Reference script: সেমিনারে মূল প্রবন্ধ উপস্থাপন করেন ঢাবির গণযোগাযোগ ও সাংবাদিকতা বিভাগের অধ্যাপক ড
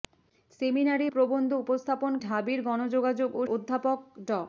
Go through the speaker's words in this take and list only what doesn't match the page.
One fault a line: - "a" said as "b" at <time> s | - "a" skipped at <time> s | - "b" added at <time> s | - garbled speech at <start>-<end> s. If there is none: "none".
- "মূল" skipped at 1.1 s
- "করেন" skipped at 2.1 s
- "সাংবাদিকতা বিভাগের" skipped at 3.4 s